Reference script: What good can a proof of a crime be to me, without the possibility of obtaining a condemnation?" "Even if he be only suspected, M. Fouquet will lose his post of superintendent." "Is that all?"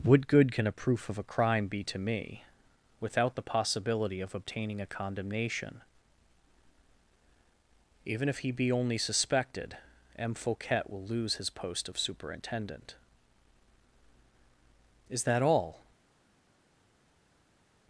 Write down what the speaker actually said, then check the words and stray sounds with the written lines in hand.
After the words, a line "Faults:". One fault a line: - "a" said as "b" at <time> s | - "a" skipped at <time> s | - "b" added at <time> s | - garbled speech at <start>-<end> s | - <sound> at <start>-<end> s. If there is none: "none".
What good can a proof of a crime be to me, without the possibility of obtaining a condemnation?" "Even if he be only suspected, M. Fouquet will lose his post of superintendent." "Is that all?"
Faults:
none